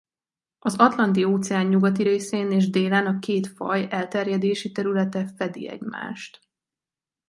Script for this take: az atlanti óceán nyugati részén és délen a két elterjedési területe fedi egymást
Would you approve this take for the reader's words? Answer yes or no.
no